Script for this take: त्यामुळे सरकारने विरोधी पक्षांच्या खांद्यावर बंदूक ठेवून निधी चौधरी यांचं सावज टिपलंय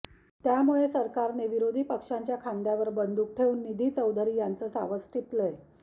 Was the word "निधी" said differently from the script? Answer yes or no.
no